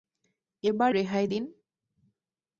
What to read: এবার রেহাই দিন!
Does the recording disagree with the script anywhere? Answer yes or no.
no